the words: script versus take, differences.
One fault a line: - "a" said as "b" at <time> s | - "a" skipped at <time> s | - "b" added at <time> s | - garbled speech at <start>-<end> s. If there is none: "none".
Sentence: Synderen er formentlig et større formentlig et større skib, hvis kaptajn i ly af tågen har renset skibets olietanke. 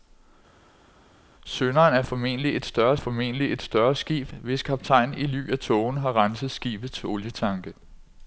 none